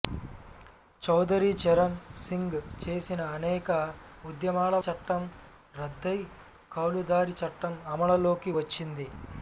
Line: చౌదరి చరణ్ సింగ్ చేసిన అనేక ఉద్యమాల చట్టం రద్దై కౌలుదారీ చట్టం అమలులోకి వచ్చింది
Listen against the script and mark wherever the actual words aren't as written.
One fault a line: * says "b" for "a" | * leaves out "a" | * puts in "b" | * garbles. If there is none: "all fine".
all fine